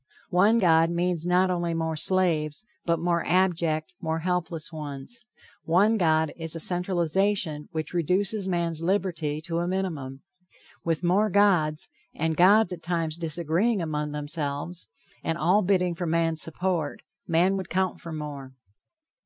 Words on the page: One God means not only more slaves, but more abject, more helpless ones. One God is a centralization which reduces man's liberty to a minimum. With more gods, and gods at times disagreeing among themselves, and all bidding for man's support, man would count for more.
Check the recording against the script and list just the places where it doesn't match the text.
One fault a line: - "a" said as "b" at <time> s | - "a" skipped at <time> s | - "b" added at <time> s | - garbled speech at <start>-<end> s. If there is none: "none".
none